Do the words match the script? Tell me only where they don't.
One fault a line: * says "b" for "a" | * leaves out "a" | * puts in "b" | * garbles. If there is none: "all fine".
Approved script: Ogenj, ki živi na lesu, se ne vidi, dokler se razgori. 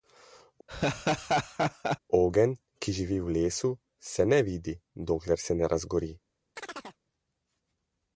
* says "v" for "na"
* puts in "ne"